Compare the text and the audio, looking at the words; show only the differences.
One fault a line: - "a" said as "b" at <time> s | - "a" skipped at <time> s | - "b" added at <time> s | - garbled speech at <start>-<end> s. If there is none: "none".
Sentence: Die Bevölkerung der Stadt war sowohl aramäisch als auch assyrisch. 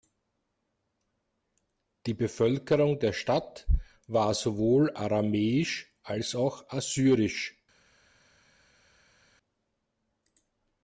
none